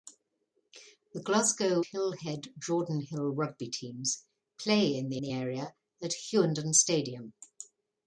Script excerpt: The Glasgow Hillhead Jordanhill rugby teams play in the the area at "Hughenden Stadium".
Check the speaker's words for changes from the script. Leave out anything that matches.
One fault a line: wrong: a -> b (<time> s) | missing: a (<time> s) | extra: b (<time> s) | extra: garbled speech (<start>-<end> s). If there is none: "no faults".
no faults